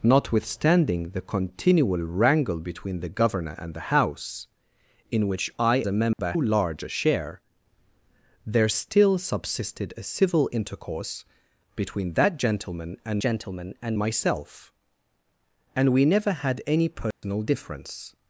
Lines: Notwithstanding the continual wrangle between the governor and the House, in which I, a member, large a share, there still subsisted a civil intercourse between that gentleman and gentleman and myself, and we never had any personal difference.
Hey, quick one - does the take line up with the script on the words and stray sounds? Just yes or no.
no